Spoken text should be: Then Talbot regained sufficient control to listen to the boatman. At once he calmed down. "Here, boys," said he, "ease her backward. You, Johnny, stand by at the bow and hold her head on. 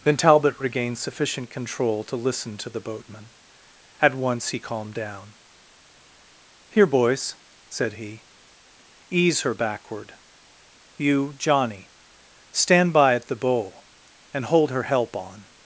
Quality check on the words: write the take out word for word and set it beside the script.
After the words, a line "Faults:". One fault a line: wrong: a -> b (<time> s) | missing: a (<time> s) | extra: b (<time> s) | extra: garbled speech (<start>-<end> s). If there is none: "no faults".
Then Talbot regained sufficient control to listen to the boatman. At once he calmed down. "Here, boys," said he, "ease her backward. You, Johnny, stand by at the bow and hold her help on.
Faults:
wrong: head -> help (14.8 s)